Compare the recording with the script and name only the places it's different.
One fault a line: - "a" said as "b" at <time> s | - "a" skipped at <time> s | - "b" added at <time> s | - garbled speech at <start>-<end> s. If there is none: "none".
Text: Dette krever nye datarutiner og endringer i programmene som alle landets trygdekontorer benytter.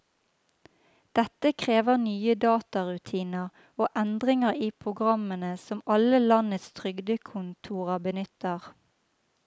none